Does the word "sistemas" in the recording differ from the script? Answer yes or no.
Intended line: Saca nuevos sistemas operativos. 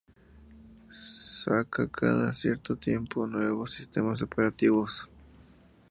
no